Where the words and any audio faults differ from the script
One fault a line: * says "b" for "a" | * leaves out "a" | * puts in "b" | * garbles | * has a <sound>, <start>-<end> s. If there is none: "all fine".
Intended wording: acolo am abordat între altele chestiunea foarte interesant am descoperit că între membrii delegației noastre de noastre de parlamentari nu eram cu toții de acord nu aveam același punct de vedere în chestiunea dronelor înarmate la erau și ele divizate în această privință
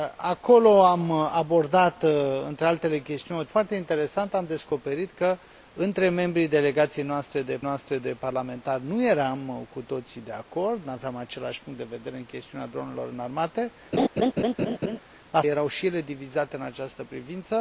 * has a laugh, 13.9-15.0 s